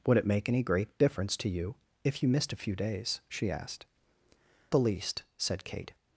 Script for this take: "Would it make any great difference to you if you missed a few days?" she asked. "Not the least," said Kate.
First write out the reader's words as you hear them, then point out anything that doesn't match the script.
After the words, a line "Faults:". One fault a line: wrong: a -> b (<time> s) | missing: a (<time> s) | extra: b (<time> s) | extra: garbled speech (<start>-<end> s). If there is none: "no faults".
"Would it make any great difference to you if you missed a few days?" she asked. "The least," said Kate.
Faults:
missing: Not (3.9 s)